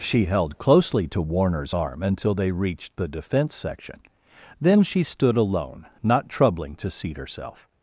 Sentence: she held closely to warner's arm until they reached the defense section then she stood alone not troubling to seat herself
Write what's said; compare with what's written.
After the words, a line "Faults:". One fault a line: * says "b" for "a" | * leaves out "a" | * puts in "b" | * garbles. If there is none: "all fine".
she held closely to warner's arm until they reached the defense section then she stood alone not troubling to seat herself
Faults:
all fine